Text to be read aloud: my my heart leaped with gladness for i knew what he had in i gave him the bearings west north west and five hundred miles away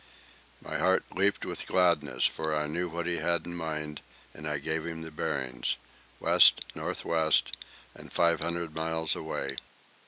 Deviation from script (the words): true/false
true